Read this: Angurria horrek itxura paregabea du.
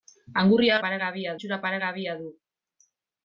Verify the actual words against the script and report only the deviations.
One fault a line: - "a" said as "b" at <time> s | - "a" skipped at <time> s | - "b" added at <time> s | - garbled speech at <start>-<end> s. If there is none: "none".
- "horrek" said as "paregabea" at 0.8 s